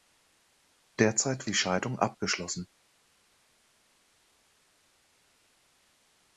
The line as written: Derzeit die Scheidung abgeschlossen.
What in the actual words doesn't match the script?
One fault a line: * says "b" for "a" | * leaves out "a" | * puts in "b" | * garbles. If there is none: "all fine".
all fine